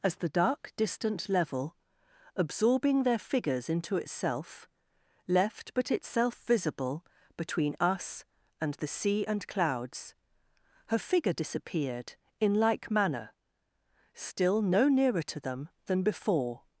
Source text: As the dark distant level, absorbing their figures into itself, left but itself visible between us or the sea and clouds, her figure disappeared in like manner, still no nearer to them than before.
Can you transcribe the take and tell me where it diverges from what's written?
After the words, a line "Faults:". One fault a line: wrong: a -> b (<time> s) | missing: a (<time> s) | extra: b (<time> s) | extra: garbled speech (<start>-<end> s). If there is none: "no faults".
As the dark distant level, absorbing their figures into itself, left but itself visible between us and the sea and clouds, her figure disappeared in like manner, still no nearer to them than before.
Faults:
wrong: or -> and (8.6 s)